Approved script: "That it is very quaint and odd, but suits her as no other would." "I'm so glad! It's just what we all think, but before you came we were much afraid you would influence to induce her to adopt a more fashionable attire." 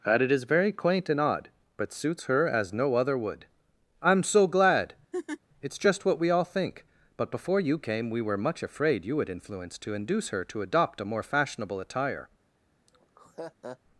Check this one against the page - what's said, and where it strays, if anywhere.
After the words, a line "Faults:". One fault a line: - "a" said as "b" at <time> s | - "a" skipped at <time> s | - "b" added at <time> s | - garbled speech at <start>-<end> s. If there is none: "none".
"That it is very quaint and odd, but suits her as no other would." "I'm so glad! It's just what we all think, but before you came we were much afraid you would influence to induce her to adopt a more fashionable attire."
Faults:
none